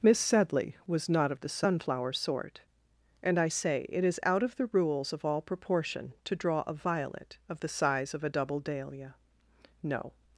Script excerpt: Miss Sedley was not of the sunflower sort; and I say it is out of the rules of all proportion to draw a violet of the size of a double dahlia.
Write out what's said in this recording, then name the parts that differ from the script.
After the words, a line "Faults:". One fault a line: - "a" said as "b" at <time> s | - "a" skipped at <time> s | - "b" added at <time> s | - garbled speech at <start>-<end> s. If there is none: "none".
Miss Sedley was not of the sunflower sort; and I say it is out of the rules of all proportion to draw a violet of the size of a double dahlia. No
Faults:
- "No" added at 9.8 s